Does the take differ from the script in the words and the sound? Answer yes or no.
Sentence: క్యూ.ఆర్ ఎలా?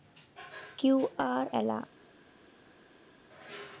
no